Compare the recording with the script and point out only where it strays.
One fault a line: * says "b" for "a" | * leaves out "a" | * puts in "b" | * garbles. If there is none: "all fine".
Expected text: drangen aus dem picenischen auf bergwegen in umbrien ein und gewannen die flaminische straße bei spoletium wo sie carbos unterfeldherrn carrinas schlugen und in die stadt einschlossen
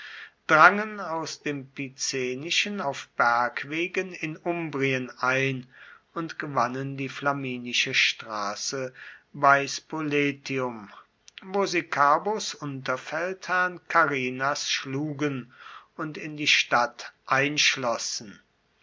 all fine